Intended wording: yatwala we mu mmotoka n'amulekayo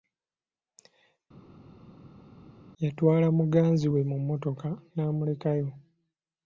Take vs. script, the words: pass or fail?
fail